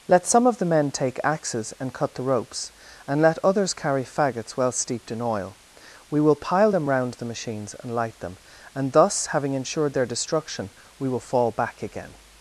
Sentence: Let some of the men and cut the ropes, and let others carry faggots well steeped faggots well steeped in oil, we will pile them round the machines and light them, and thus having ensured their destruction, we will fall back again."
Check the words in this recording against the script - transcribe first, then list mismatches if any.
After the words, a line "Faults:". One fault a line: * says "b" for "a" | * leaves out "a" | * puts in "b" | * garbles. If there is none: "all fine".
Let some of the men take axes and cut the ropes, and let others carry faggots well steeped in oil, we will pile them round the machines and light them, and thus having ensured their destruction, we will fall back again."
Faults:
* puts in "take axes"
* leaves out "faggots well steeped"